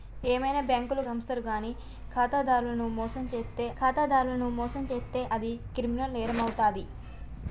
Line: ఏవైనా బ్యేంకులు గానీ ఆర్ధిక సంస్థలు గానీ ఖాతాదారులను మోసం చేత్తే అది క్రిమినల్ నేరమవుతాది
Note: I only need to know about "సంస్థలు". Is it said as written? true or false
false